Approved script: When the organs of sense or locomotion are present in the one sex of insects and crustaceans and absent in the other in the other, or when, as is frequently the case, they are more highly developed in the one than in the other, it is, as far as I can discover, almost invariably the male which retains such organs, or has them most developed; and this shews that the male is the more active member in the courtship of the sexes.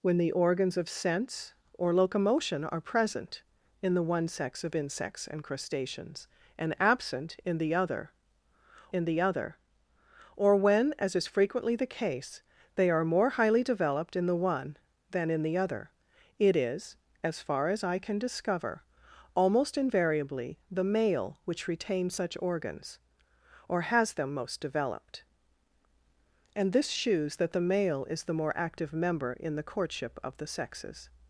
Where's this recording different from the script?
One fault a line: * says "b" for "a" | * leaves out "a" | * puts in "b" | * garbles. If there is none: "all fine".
all fine